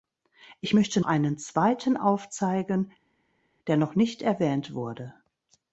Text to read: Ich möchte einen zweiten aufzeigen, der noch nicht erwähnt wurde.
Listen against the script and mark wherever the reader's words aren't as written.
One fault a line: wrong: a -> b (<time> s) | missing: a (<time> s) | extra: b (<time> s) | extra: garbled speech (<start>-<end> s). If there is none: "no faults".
no faults